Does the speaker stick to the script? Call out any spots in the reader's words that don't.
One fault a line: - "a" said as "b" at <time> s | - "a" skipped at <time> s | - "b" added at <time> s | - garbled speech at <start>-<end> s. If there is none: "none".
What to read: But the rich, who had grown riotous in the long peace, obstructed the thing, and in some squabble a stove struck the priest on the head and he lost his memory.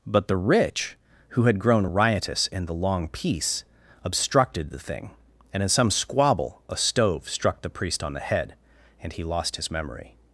none